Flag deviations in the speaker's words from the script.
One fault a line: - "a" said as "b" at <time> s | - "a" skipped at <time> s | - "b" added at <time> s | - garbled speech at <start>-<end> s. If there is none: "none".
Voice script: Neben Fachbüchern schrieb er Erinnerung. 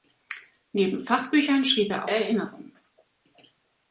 none